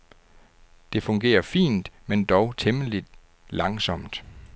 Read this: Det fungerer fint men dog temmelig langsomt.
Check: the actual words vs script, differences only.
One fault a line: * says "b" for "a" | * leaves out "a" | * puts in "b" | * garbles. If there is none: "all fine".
all fine